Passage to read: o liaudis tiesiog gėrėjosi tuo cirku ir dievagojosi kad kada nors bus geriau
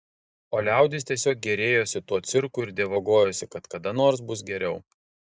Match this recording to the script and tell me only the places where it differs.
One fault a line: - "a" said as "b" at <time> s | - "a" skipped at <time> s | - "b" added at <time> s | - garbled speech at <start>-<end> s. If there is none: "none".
none